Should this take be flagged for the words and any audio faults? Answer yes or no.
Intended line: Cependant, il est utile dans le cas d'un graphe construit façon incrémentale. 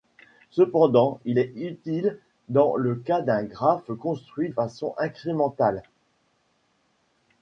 no